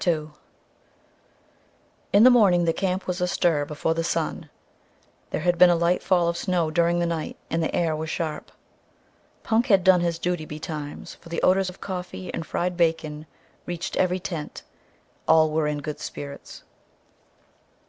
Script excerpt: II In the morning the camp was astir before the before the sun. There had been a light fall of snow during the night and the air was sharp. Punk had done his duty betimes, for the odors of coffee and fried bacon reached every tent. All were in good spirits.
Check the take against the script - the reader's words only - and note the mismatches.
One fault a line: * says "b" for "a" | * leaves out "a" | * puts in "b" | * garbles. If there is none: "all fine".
* leaves out "before the"